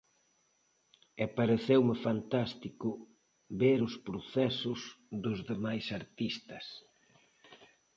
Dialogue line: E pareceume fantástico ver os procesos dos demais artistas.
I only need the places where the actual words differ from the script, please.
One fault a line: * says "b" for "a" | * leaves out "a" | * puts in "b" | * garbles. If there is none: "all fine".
all fine